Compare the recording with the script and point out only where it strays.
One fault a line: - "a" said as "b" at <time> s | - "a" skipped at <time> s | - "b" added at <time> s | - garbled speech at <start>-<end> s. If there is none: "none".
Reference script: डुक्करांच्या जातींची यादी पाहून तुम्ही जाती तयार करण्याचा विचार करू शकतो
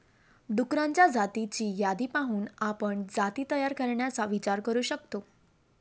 - "तुम्ही" said as "आपण" at 2.6 s